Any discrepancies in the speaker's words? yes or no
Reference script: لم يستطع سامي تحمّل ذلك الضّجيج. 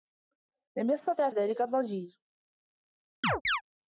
yes